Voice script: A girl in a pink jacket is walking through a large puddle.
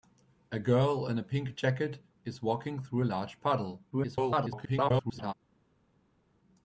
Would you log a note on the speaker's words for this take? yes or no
yes